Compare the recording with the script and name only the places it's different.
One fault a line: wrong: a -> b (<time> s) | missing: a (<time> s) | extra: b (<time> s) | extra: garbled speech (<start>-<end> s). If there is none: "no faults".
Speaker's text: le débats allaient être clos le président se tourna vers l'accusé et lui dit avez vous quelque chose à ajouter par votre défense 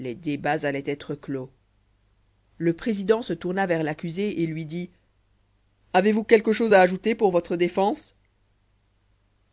wrong: le -> les (0.0 s)
wrong: par -> pour (7.2 s)